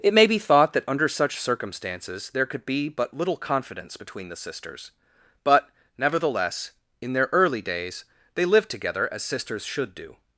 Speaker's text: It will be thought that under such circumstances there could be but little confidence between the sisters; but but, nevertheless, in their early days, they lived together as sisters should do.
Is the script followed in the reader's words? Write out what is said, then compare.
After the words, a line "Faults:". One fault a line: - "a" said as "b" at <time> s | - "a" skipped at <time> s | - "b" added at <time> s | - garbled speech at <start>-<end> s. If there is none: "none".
It may be thought that under such circumstances there could be but little confidence between the sisters; but, nevertheless, in their early days, they lived together as sisters should do.
Faults:
- "will" said as "may" at 0.1 s
- "but" skipped at 5.7 s